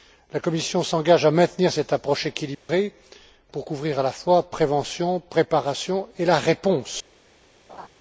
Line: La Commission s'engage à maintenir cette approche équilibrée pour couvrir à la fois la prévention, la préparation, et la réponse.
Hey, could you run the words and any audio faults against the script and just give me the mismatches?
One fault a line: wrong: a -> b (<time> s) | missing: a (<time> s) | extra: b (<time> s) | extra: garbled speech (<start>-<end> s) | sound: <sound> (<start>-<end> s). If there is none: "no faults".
sound: dropout (2.5-2.7 s)
sound: laugh (7.7-7.9 s)